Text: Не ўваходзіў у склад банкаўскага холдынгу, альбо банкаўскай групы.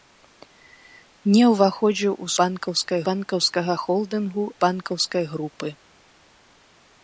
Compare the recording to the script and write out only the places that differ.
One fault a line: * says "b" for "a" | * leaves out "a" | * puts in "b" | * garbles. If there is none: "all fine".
* says "банкаўскай" for "склад"
* leaves out "альбо"